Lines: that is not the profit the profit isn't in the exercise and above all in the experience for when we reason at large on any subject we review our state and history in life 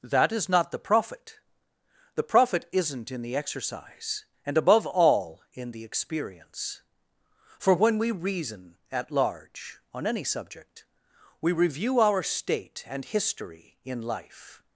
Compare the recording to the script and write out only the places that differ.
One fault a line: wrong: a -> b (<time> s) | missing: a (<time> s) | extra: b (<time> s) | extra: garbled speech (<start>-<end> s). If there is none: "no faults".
no faults